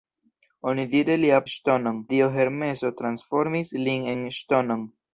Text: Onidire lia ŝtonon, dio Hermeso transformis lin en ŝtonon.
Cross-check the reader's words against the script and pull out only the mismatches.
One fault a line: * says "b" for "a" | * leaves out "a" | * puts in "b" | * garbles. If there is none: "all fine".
all fine